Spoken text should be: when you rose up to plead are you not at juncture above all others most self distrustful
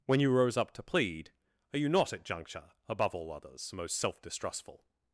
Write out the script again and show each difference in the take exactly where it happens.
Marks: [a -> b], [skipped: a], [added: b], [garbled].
when you rose up to plead are you not at juncture above all others most self distrustful